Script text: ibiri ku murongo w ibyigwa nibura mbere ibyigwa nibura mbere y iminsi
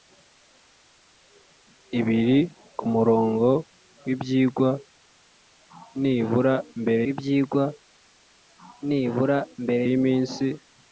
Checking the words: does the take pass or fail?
pass